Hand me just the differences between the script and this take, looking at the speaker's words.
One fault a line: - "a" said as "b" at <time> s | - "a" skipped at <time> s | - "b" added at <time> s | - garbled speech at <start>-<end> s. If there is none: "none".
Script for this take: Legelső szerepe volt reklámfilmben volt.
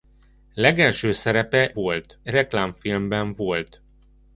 none